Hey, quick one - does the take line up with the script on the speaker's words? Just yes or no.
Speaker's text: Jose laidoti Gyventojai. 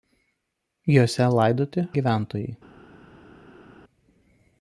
yes